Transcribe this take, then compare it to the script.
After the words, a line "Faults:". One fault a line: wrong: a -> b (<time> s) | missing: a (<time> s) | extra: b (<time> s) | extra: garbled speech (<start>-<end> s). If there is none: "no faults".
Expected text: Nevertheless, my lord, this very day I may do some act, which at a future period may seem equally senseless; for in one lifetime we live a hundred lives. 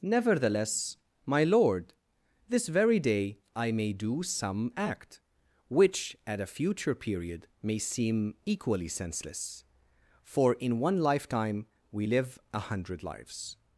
Nevertheless, my lord, this very day I may do some act, which at a future period may seem equally senseless; for in one lifetime we live a hundred lives.
Faults:
no faults